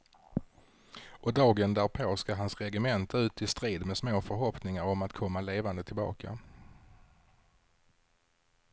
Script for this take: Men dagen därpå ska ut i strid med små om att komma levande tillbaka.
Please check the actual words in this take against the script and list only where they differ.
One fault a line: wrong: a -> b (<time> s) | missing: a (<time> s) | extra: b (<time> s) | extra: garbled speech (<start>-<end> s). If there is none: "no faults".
wrong: Men -> Och (1.2 s)
extra: hans regemente (2.4 s)
extra: förhoppningar (4.2 s)